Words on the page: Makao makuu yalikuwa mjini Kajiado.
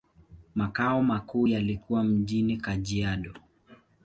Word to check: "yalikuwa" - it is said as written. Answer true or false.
true